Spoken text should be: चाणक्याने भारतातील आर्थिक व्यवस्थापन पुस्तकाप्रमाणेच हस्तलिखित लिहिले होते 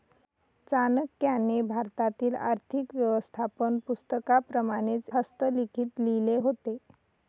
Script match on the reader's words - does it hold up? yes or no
yes